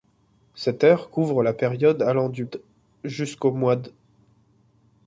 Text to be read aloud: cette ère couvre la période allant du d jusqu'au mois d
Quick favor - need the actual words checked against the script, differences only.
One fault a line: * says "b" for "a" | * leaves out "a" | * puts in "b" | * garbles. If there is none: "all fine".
all fine